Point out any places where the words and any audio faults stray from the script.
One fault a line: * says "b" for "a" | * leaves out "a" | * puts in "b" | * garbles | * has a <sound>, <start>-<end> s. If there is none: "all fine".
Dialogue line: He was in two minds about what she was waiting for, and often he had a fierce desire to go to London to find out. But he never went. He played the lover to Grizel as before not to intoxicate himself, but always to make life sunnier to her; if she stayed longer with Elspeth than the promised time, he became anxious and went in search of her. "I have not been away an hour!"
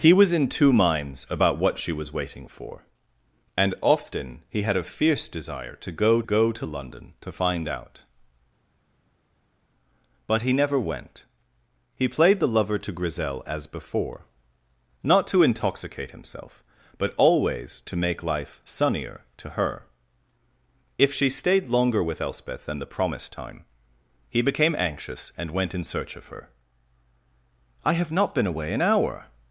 * puts in "go"